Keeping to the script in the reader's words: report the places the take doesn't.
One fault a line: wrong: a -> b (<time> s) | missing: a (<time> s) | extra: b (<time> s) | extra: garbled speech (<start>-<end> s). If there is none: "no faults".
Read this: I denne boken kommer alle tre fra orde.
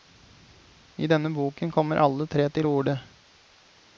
wrong: fra -> til (2.5 s)